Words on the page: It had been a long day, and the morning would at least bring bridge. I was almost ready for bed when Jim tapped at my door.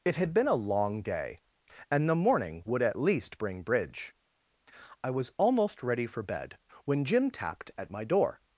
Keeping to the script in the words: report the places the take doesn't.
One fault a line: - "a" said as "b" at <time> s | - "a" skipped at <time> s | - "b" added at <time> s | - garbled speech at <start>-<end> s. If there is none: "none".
none